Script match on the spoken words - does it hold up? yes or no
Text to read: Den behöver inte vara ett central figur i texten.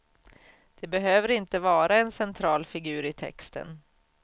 no